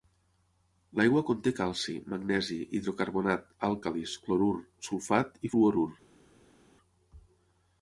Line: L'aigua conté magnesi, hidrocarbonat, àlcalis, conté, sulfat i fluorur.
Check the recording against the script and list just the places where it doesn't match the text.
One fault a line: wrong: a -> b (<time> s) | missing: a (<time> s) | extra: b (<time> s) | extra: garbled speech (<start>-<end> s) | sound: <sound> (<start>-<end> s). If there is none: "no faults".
extra: calci (1.6 s)
wrong: conté -> clorur (4.2 s)